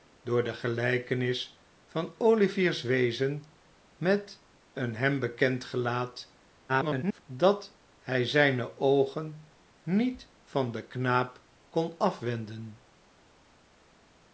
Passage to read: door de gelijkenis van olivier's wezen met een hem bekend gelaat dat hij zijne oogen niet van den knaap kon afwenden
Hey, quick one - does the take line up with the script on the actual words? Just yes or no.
no